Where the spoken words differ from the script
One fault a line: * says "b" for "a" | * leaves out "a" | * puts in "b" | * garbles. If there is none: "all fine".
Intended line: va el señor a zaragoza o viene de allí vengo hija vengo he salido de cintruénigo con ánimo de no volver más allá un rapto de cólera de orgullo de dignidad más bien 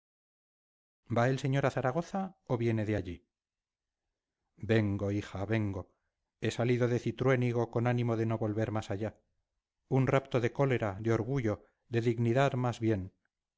all fine